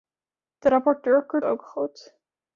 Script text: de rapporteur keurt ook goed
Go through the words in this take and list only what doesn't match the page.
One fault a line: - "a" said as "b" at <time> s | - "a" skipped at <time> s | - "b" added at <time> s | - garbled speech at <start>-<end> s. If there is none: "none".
none